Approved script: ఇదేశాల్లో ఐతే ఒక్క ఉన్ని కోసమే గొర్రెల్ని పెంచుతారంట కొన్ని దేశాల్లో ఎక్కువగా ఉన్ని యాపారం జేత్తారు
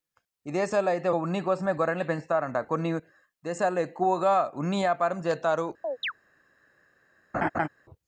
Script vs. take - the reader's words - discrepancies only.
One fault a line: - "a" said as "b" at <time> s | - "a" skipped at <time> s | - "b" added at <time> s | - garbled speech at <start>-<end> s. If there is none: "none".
- "ఒక్క" skipped at 1.1 s